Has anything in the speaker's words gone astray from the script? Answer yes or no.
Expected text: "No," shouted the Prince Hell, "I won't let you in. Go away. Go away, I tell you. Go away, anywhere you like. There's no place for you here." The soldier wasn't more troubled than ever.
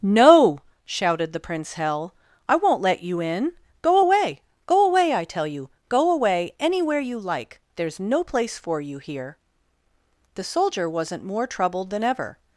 no